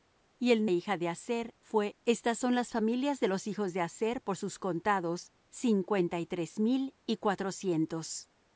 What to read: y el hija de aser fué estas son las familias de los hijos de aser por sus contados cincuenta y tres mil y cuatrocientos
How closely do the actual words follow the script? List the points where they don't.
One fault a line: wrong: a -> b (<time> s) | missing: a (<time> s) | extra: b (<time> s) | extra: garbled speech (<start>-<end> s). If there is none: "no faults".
no faults